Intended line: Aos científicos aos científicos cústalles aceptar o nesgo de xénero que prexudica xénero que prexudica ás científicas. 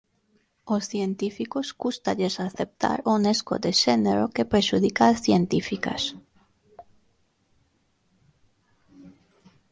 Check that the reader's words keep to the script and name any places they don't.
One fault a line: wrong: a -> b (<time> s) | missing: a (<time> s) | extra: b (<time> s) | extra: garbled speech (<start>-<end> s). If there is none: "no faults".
missing: aos científicos (1.7 s)
missing: xénero que prexudica (5.0 s)